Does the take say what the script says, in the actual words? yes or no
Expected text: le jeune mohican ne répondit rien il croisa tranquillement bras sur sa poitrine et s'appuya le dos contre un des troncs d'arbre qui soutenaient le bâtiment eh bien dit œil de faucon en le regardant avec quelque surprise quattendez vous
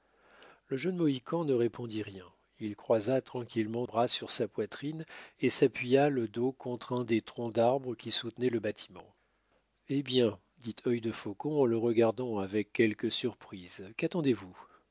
yes